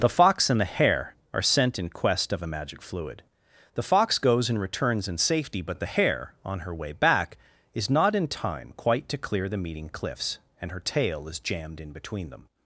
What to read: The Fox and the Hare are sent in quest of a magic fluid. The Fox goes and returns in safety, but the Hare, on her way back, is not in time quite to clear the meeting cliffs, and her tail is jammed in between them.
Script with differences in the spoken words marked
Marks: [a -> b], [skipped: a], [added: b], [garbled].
The Fox and the Hare are sent in quest of a magic fluid. The Fox goes and returns in safety, but the Hare, on her way back, is not in time quite to clear the meeting cliffs, and her tail is jammed in between them.